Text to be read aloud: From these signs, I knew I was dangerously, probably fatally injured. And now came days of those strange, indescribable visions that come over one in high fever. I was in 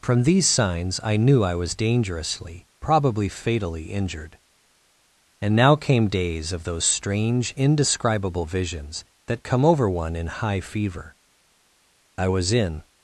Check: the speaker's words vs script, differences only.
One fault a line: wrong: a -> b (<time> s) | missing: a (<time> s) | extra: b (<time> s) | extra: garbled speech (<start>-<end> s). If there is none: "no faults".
no faults